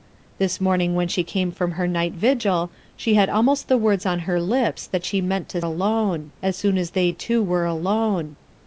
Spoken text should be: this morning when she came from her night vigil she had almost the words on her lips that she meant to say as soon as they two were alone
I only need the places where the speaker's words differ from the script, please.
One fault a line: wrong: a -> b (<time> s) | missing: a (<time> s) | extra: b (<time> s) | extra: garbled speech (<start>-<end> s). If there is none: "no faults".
wrong: say -> alone (5.6 s)